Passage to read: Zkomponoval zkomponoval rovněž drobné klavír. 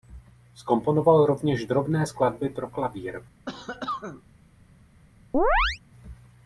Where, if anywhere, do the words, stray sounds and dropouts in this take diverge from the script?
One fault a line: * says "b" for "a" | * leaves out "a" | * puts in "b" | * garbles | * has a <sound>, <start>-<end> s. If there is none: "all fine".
* leaves out "zkomponoval"
* puts in "skladby pro"
* has a cough, 3.5-4.2 s
* has a chirp, 5.3-5.8 s